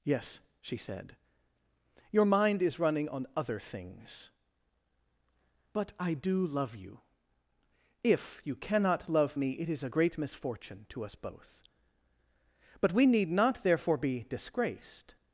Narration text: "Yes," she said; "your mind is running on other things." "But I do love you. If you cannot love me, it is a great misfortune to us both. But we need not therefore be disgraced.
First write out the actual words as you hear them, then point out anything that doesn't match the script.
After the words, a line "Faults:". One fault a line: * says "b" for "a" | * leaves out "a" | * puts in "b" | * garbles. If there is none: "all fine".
"Yes," she said; "your mind is running on other things." "But I do love you. If you cannot love me, it is a great misfortune to us both. But we need not therefore be disgraced.
Faults:
all fine